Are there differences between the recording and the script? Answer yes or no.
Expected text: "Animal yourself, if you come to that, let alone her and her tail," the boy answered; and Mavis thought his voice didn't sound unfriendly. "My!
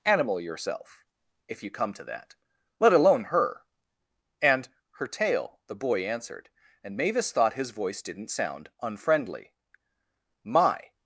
no